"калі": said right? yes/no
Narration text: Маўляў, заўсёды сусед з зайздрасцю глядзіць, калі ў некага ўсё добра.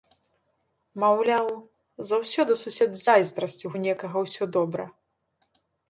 no